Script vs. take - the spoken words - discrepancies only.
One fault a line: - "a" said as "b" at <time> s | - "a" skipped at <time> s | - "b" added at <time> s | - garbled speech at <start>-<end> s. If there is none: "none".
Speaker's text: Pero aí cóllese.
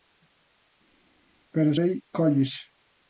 none